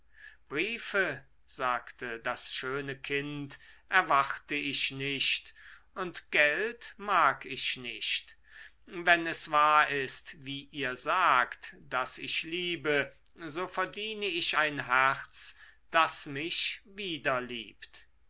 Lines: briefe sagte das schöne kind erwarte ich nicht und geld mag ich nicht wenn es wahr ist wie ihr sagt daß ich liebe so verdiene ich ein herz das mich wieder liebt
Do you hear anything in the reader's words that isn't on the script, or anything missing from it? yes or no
no